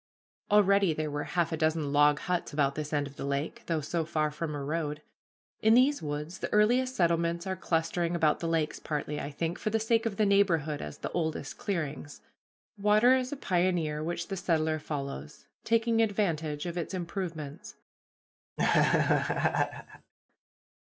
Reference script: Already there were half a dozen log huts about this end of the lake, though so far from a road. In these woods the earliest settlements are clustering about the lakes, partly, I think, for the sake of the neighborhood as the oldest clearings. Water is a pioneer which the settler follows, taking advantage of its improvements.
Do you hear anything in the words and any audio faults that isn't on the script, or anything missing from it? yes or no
yes